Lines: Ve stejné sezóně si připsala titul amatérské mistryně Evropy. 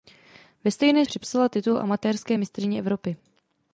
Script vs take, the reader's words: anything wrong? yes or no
yes